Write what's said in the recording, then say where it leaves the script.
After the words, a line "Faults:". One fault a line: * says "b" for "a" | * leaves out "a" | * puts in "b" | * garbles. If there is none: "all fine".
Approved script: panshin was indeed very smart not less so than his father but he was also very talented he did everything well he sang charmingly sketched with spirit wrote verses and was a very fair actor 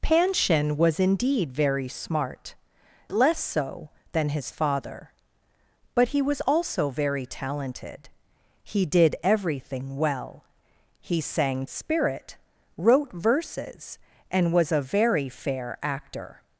panshin was indeed very smart less so than his father but he was also very talented he did everything well he sang spirit wrote verses and was a very fair actor
Faults:
* leaves out "not"
* leaves out "charmingly sketched with"